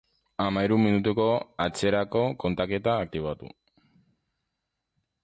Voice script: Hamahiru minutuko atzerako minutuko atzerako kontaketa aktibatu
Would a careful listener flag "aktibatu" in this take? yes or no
no